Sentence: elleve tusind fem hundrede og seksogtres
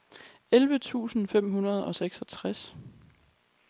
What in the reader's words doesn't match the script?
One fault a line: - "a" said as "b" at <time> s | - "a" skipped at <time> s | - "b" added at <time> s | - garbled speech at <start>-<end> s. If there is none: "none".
none